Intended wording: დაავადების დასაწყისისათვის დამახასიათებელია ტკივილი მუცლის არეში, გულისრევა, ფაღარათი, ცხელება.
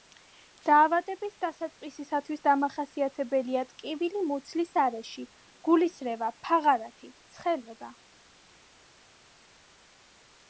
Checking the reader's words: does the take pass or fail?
pass